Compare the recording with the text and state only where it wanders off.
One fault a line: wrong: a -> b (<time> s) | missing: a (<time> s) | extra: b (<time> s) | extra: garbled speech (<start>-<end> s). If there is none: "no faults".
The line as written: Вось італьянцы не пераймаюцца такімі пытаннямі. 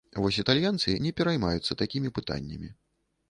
no faults